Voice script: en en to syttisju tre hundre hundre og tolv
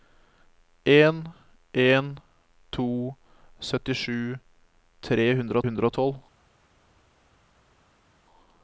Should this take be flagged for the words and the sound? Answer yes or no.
no